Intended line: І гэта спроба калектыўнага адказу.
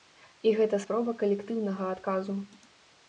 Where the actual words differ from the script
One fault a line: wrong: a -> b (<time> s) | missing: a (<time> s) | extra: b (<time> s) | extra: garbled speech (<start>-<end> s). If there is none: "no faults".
no faults